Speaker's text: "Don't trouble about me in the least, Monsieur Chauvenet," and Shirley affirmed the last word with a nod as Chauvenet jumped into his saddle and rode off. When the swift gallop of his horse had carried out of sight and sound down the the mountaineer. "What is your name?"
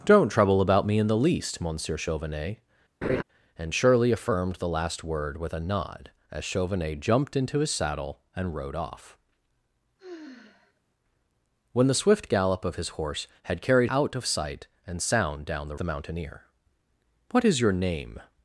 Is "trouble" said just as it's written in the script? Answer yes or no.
yes